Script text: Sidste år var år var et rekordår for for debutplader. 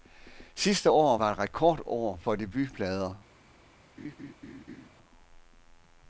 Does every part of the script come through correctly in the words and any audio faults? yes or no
no